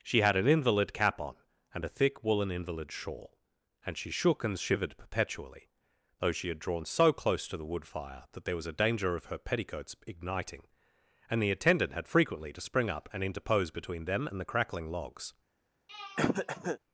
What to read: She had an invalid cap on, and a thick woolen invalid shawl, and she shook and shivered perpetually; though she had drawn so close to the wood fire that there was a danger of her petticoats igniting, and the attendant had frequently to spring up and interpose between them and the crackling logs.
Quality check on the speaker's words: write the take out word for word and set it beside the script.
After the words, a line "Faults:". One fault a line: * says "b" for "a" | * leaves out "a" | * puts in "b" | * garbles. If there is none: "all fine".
She had an invalid cap on, and a thick woolen invalid shawl, and she shook and shivered perpetually; though she had drawn so close to the wood fire that there was a danger of her petticoats igniting, and the attendant had frequently to spring up and interpose between them and the crackling logs.
Faults:
all fine